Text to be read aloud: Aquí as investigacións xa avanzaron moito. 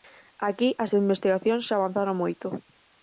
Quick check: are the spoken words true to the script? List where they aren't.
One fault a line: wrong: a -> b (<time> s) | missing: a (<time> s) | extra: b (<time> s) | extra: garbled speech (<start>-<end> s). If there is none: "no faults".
no faults